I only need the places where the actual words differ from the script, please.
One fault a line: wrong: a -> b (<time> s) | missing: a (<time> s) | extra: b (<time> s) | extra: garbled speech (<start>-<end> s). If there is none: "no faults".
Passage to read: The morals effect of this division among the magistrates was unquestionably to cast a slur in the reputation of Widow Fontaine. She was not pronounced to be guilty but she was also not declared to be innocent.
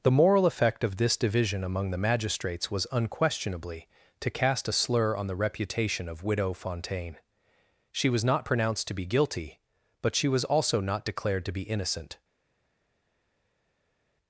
wrong: morals -> moral (0.1 s)
wrong: in -> on (5.2 s)